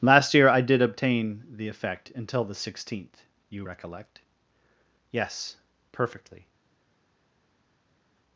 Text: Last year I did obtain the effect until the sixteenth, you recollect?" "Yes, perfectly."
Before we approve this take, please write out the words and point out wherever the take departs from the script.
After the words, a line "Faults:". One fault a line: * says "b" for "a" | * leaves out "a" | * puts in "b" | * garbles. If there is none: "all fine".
Last year I did obtain the effect until the sixteenth, you recollect?" "Yes, perfectly."
Faults:
all fine